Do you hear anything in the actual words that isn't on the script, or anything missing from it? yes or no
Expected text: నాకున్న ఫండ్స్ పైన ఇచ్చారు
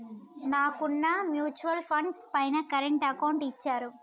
yes